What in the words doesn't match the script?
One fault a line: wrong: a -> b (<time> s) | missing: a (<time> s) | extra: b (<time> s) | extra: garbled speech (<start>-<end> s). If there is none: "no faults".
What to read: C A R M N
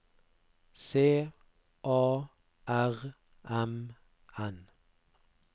no faults